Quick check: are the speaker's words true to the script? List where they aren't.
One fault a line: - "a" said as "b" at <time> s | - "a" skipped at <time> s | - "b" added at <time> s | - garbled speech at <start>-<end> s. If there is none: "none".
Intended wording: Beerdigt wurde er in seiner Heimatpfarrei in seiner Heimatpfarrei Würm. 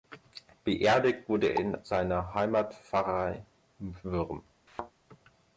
- "in seiner Heimatpfarrei" skipped at 3.4 s